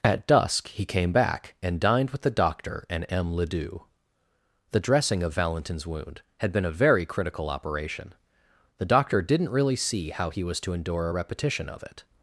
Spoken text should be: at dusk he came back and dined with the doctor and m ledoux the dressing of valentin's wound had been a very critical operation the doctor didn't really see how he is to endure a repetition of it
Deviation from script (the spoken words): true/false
true